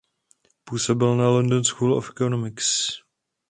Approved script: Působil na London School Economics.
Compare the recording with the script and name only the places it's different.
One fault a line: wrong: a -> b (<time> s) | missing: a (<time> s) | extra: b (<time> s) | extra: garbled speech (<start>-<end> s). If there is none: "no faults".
extra: of (1.9 s)